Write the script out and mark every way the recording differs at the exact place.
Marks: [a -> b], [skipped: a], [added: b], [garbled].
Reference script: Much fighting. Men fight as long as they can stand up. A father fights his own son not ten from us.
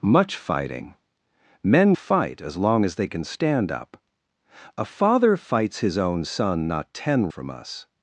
Much fighting. Men fight as long as they can stand up. A father fights his own son not ten from us.